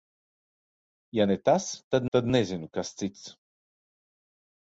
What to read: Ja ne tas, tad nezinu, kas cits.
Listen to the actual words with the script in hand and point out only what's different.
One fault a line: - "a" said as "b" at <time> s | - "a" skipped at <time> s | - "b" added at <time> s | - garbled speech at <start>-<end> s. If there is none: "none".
- "tad" added at 2.2 s